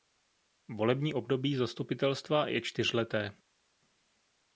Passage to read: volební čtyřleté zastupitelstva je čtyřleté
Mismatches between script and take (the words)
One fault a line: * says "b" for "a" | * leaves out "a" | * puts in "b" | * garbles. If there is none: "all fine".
* says "období" for "čtyřleté"